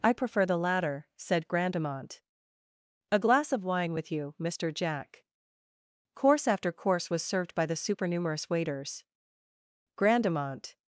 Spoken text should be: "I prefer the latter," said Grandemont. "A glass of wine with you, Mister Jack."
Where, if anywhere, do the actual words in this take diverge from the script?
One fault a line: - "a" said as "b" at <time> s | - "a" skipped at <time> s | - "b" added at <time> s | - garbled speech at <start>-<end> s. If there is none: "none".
- "Course after course was served by the supernumerous waiters Grandemont" added at 6.1 s